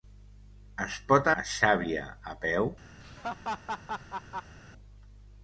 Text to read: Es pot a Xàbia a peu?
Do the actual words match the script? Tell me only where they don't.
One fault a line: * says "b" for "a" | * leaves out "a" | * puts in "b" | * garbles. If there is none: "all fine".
all fine